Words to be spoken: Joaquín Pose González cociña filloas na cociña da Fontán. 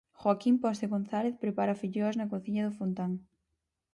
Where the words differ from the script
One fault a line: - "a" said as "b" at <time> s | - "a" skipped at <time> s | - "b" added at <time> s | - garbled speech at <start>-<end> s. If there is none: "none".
- "cociña" said as "prepara" at 1.4 s
- "da" said as "do" at 2.7 s